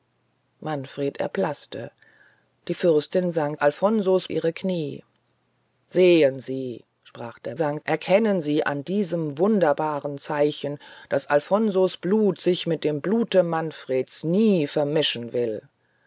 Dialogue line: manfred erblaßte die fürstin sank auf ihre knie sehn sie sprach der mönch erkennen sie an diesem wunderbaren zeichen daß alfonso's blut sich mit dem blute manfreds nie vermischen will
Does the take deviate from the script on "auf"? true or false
true